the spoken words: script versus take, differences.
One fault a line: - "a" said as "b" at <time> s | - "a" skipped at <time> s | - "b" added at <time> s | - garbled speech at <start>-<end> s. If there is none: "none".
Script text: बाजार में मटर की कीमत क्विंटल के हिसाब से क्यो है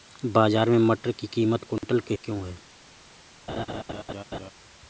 - "हिसाब से" skipped at 2.1 s